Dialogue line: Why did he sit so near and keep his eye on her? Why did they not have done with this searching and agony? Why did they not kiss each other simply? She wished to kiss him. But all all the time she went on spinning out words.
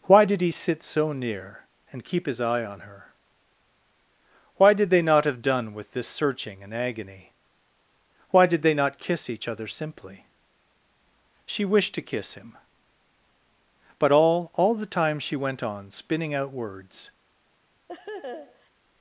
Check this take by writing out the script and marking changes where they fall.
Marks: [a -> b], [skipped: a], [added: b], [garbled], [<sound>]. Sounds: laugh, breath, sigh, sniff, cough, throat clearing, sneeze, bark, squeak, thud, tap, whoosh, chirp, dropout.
Why did he sit so near and keep his eye on her? Why did they not have done with this searching and agony? Why did they not kiss each other simply? She wished to kiss him. But all all the time she went on spinning out words. [laugh]